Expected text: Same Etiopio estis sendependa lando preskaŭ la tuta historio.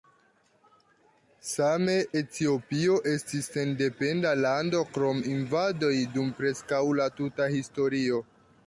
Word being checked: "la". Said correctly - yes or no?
yes